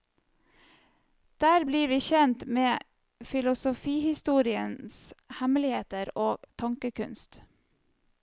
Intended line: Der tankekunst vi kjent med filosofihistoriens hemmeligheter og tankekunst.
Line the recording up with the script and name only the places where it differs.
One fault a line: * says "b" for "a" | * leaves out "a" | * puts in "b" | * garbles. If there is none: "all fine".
* says "blir" for "tankekunst"